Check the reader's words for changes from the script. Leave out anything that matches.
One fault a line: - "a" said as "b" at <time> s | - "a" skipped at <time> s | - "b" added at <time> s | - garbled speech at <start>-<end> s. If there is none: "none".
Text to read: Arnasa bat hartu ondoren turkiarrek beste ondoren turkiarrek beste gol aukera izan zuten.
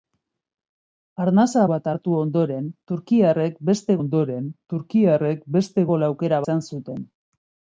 none